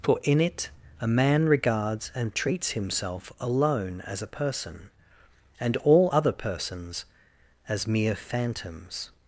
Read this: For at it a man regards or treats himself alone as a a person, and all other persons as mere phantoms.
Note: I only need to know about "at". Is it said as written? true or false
false